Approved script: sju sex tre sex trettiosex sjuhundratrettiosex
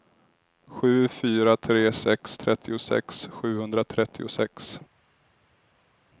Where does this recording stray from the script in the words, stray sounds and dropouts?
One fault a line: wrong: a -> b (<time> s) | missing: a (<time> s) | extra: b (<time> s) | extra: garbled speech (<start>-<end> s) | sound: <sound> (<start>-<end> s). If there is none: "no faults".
wrong: sex -> fyra (1.1 s)